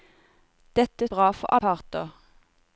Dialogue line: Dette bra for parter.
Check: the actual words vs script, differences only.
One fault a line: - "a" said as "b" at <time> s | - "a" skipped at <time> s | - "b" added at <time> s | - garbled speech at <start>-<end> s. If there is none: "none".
none